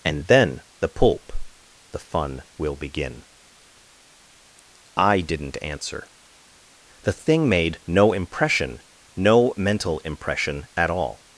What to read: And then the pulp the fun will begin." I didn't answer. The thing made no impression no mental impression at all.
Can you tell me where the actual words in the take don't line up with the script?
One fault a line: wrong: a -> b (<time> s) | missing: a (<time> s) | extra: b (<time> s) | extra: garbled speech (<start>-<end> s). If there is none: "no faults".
no faults